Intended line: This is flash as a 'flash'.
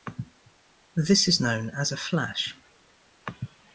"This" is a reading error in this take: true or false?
false